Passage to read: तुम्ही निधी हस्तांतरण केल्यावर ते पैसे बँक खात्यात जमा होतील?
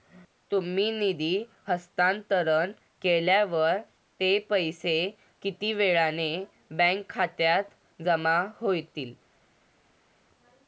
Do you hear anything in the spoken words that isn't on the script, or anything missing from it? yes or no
yes